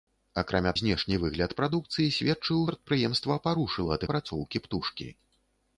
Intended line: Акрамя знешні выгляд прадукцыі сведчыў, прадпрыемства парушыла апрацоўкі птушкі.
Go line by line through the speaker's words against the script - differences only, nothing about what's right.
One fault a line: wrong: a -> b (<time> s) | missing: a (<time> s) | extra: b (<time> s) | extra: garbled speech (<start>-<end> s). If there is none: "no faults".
no faults